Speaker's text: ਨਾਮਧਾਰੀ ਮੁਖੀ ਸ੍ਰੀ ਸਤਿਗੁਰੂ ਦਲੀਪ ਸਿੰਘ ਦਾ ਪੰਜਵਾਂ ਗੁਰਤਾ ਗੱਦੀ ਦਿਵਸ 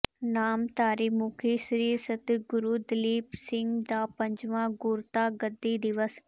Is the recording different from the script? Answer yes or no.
no